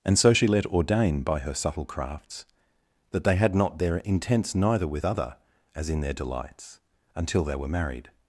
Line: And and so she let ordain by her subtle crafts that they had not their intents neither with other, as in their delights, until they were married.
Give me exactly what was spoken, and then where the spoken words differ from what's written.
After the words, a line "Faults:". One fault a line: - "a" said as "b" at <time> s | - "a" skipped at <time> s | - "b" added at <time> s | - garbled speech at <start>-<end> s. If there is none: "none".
And so she let ordain by her subtle crafts that they had not their intents neither with other, as in their delights, until they were married.
Faults:
- "and" skipped at 0.2 s